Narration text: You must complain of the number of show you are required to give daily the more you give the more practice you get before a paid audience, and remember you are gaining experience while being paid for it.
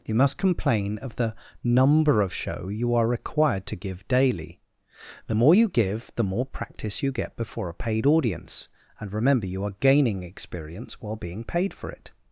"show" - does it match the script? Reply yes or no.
yes